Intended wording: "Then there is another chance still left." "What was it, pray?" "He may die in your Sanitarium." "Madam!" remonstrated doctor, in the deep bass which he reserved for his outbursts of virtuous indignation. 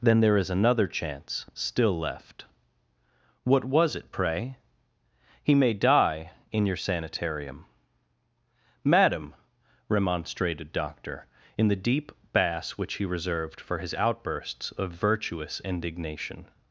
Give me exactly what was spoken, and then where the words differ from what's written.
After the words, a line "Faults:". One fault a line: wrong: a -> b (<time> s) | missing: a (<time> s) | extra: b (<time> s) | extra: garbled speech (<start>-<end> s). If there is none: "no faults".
"Then there is another chance still left." "What was it, pray?" "He may die in your Sanitarium." "Madam!" remonstrated doctor, in the deep bass which he reserved for his outbursts of virtuous indignation.
Faults:
no faults